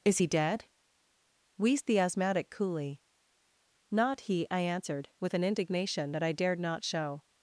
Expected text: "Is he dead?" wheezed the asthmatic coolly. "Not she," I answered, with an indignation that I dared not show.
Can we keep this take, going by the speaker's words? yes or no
no